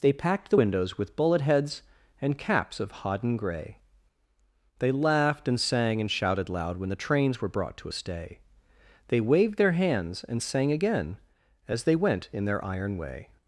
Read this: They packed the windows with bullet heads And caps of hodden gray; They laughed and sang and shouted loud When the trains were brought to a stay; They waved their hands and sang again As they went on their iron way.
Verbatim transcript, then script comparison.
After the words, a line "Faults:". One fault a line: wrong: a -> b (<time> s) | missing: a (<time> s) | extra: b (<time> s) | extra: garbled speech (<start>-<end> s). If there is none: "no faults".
They packed the windows with bullet heads And caps of hodden gray; They laughed and sang and shouted loud When the trains were brought to a stay; They waved their hands and sang again As they went in their iron way.
Faults:
wrong: on -> in (12.3 s)